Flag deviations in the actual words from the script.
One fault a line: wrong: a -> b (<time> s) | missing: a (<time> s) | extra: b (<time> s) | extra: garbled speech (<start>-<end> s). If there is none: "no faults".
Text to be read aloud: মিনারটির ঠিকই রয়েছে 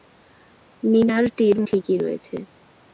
no faults